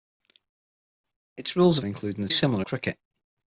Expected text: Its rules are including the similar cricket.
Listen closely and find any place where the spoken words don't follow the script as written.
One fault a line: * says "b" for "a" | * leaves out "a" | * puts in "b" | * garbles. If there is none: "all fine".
all fine